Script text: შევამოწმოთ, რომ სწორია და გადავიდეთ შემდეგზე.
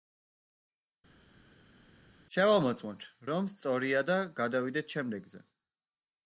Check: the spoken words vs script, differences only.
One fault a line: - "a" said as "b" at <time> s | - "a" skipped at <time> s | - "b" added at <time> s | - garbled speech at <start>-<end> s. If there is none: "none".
none